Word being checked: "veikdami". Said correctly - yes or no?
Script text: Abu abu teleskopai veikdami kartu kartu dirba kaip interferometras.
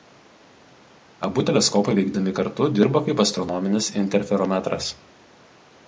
yes